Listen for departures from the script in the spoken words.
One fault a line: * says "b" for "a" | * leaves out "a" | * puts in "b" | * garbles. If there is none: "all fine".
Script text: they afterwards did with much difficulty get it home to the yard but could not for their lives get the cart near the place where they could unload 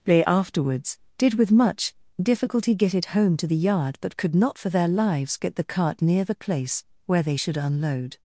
* says "should" for "could"